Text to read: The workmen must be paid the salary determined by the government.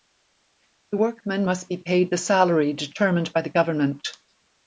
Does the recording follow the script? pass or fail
pass